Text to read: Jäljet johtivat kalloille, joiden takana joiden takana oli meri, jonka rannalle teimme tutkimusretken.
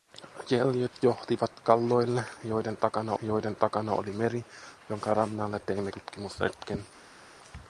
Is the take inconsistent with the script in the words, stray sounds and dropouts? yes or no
no